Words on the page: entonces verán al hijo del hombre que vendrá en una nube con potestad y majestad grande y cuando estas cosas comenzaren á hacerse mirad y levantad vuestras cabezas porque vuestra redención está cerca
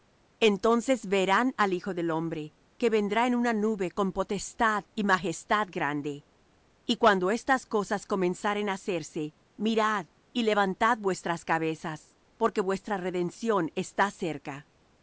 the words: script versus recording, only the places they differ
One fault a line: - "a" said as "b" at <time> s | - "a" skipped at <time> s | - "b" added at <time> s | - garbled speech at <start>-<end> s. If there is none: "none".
none